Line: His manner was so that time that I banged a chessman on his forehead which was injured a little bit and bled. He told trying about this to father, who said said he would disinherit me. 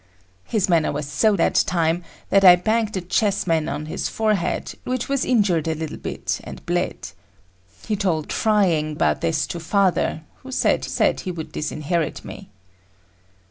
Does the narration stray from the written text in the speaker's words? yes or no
no